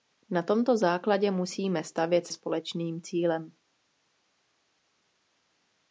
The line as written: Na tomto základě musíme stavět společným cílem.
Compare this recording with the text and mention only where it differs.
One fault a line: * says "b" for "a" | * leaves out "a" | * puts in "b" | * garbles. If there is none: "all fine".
all fine